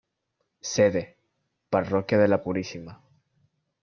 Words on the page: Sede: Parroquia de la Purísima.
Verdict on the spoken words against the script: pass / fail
pass